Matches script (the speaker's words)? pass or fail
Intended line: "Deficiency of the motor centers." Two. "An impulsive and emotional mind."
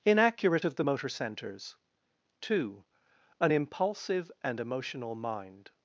fail